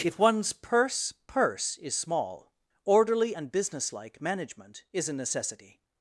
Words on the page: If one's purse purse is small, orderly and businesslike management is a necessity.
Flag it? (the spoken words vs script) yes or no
no